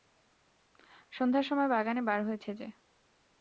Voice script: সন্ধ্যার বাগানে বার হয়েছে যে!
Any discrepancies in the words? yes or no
yes